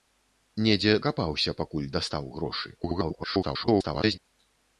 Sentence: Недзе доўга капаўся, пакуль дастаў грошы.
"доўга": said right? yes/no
no